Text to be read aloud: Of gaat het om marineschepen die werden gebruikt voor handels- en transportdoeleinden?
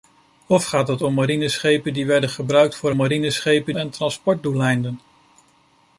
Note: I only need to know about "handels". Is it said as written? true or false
false